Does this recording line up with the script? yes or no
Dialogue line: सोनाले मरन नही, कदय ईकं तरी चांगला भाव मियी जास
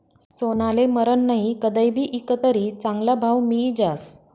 no